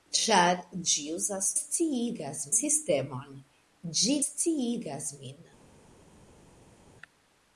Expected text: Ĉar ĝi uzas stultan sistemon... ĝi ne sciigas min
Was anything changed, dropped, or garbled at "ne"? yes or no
yes